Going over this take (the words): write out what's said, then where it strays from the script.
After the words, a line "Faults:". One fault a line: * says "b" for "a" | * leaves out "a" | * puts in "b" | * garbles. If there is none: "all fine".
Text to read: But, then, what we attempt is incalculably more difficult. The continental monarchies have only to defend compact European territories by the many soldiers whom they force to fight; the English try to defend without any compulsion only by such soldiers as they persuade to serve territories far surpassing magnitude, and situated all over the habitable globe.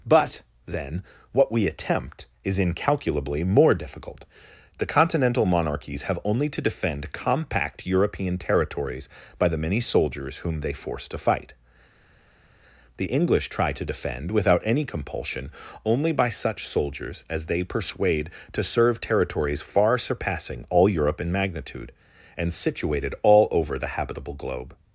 But, then, what we attempt is incalculably more difficult. The continental monarchies have only to defend compact European territories by the many soldiers whom they force to fight; the English try to defend without any compulsion only by such soldiers as they persuade to serve territories far surpassing all Europe in magnitude, and situated all over the habitable globe.
Faults:
* puts in "all Europe in"